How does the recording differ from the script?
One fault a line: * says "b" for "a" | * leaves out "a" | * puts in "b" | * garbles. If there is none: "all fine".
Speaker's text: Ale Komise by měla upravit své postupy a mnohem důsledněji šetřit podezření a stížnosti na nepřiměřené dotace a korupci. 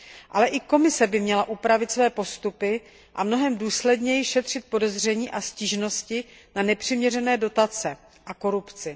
* puts in "i"